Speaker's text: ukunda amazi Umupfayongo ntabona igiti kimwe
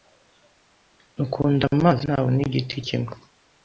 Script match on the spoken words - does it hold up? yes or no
no